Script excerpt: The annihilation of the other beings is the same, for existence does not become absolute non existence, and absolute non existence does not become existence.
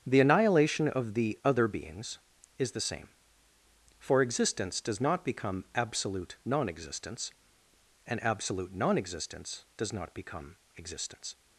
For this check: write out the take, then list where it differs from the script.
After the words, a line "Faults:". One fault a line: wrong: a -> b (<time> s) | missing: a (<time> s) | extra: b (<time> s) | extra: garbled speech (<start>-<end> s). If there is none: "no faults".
The annihilation of the other beings is the same, for existence does not become absolute non existence, and absolute non existence does not become existence.
Faults:
no faults